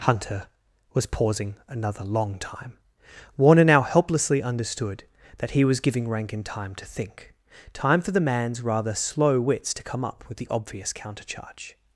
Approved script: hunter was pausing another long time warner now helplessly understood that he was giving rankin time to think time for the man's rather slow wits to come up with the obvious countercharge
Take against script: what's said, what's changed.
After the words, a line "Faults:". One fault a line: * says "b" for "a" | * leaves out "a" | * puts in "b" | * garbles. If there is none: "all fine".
hunter was pausing another long time warner now helplessly understood that he was giving rankin time to think time for the man's rather slow wits to come up with the obvious countercharge
Faults:
all fine